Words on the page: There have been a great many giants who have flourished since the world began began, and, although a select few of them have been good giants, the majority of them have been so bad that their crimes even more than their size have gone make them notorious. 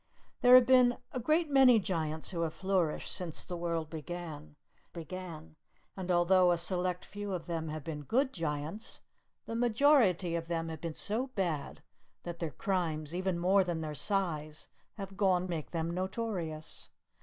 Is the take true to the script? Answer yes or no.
yes